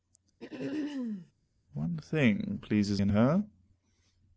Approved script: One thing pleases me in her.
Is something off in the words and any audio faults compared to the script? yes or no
yes